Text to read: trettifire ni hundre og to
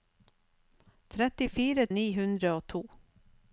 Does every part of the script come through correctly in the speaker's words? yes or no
yes